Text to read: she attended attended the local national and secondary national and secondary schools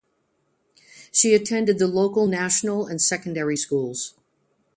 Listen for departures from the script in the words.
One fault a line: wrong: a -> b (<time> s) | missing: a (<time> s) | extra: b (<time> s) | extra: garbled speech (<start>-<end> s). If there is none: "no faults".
missing: attended (1.8 s)
missing: national and secondary (3.6 s)